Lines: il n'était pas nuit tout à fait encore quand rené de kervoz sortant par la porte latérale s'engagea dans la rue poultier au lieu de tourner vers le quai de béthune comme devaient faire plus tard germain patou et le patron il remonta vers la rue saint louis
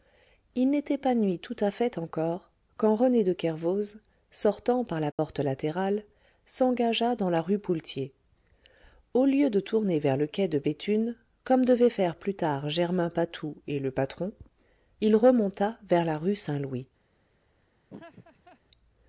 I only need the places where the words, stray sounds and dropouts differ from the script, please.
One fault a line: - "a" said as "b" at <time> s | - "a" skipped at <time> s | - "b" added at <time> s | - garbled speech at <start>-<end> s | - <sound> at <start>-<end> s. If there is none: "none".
- dropout at 5.1-5.2 s
- laugh at 17.9-18.6 s